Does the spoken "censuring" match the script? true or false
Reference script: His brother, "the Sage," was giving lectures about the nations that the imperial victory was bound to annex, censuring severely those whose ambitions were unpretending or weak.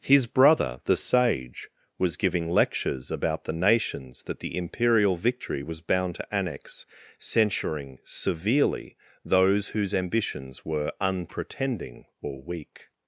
true